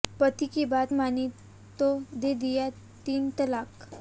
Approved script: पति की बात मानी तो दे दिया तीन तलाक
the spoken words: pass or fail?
pass